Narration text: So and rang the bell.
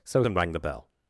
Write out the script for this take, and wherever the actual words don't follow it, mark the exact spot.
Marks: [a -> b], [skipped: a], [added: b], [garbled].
So and rang the bell.